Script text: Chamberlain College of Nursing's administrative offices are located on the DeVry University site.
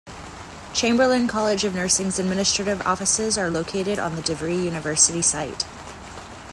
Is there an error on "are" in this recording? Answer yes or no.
no